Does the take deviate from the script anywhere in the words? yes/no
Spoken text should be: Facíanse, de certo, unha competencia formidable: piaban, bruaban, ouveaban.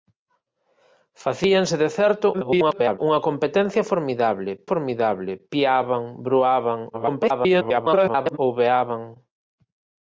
yes